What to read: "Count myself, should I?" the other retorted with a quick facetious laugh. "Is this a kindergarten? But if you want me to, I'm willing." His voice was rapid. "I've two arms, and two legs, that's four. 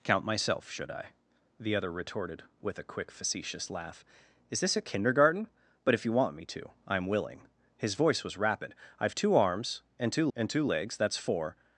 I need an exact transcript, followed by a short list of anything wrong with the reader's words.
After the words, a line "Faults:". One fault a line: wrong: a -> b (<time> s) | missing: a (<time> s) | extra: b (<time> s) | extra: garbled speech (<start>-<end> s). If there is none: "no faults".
"Count myself, should I?" the other retorted with a quick facetious laugh. "Is this a kindergarten? But if you want me to, I'm willing." His voice was rapid. "I've two arms, and two and two legs, that's four.
Faults:
extra: and two (10.4 s)